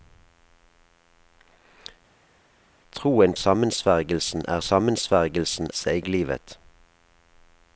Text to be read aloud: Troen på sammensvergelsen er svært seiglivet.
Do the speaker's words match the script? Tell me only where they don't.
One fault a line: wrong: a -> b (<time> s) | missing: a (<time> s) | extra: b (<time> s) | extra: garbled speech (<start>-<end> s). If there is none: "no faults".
missing: på (3.3 s)
wrong: svært -> sammensvergelsen (4.6 s)